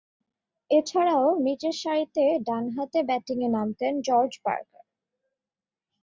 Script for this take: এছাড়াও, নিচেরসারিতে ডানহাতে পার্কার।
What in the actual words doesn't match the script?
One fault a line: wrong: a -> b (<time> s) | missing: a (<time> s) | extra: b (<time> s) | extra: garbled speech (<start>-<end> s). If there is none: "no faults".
extra: ব্যাটিংয়ে নামতেন জর্জ (3.1 s)